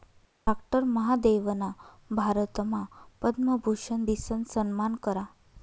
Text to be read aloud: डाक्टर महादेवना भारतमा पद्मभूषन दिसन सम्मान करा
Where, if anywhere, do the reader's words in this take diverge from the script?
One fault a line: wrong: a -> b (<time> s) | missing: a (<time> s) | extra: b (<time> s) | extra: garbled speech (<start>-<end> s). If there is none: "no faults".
no faults